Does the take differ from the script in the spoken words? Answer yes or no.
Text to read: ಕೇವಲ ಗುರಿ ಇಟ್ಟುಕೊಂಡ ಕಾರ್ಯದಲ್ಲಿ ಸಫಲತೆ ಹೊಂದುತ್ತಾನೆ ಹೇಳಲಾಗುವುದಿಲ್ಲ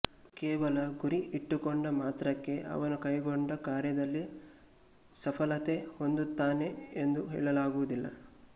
yes